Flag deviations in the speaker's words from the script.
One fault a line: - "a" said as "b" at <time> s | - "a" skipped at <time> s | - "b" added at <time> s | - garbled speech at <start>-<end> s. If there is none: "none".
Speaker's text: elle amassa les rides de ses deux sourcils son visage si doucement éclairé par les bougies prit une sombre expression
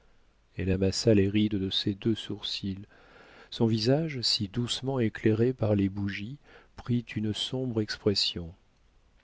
none